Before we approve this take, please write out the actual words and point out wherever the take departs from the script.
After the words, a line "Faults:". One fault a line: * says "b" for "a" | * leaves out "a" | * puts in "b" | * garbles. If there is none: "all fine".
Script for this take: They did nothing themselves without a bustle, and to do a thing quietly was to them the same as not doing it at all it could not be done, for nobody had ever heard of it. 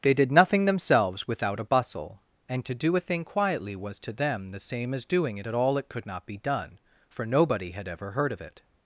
They did nothing themselves without a bustle, and to do a thing quietly was to them the same as doing it at all it could not be done, for nobody had ever heard of it.
Faults:
* leaves out "not"